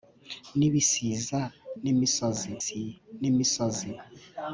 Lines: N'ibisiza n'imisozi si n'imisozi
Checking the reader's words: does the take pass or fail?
pass